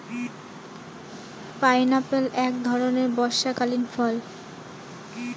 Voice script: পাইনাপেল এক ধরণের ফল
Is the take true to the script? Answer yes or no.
no